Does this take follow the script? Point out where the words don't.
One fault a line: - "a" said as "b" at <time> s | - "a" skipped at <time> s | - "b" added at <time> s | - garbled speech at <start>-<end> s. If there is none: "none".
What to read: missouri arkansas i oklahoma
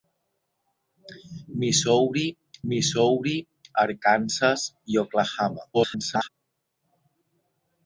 - "missouri" added at 2.7 s
- garbled speech at 5.7-6.3 s